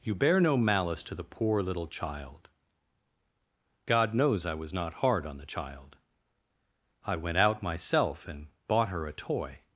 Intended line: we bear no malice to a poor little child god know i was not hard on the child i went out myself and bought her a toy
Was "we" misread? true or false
true